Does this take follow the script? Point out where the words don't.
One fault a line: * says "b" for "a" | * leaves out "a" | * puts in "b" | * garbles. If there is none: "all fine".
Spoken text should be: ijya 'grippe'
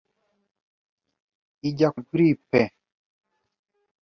all fine